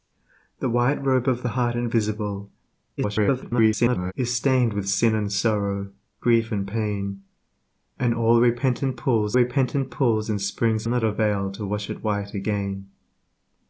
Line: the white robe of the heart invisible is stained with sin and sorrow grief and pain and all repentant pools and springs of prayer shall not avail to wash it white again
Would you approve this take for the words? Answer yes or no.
no